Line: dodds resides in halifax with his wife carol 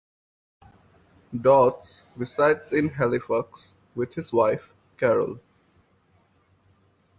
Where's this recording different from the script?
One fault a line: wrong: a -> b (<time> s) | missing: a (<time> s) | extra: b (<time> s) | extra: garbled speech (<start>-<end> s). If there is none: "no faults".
no faults